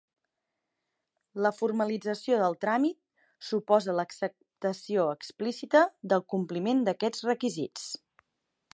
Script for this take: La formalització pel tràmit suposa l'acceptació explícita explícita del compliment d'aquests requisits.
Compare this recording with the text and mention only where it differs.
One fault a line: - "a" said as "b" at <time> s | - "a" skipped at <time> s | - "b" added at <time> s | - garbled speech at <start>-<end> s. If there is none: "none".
- "pel" said as "del" at 2.4 s
- "explícita" skipped at 5.8 s